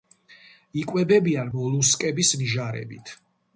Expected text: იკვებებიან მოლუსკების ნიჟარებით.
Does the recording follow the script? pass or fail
pass